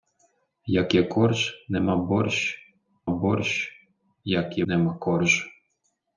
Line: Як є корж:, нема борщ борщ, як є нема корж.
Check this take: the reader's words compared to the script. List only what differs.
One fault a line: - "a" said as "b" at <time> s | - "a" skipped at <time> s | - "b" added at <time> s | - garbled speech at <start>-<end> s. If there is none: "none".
none